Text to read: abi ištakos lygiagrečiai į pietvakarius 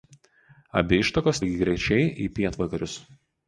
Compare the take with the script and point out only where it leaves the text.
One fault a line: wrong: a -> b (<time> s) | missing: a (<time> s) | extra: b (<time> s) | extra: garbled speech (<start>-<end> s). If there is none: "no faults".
no faults